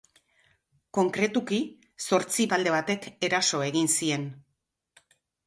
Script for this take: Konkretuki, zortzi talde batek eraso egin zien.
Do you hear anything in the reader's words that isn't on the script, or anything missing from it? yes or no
no